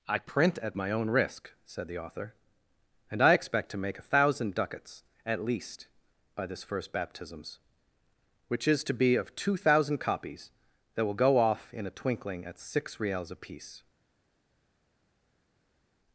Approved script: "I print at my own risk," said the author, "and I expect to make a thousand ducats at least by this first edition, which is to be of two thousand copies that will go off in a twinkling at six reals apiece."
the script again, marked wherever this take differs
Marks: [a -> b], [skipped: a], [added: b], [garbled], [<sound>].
"I print at my own risk," said the author, "and I expect to make a thousand ducats at least by this first [edition, -> baptisms] which is to be of two thousand copies that will go off in a twinkling at six reals apiece."